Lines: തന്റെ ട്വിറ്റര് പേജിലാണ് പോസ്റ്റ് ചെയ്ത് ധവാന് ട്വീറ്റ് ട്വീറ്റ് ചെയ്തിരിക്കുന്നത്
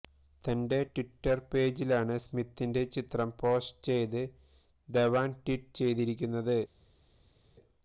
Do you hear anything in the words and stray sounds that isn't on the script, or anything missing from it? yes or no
yes